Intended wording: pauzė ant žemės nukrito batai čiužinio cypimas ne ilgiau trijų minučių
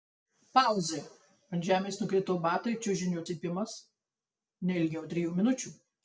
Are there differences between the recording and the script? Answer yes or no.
no